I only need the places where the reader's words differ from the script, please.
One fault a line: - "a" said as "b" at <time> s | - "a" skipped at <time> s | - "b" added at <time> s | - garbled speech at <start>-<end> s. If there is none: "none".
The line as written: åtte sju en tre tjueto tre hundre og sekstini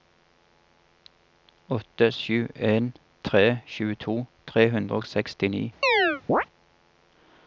none